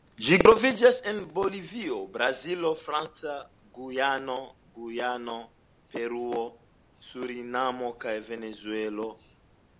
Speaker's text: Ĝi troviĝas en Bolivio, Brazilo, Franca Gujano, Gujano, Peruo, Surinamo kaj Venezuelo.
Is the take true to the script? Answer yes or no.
yes